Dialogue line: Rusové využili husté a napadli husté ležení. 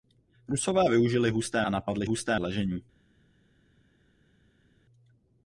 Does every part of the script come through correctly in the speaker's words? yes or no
yes